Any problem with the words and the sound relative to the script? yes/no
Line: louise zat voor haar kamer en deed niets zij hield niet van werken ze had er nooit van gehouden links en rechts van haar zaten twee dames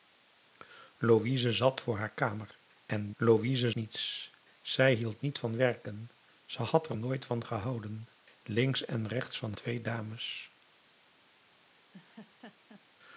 yes